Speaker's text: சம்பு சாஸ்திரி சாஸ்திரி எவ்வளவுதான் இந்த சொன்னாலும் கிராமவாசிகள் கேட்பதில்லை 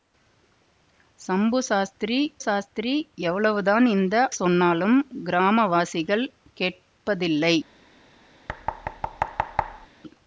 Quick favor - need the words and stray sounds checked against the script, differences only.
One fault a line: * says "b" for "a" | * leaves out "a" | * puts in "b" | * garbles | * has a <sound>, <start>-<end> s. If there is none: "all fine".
* has a thud, 8.5-9.9 s